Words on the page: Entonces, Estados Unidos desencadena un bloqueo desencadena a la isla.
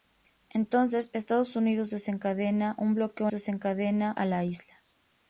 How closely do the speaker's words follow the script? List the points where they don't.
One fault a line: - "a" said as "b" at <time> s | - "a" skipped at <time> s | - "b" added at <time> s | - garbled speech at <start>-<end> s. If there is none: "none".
none